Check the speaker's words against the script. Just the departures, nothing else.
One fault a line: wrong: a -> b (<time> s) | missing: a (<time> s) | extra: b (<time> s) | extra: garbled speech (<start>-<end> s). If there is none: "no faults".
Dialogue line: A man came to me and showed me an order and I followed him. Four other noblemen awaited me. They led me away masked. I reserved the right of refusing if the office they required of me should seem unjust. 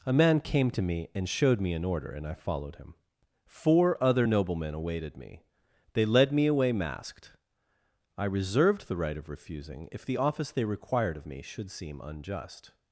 no faults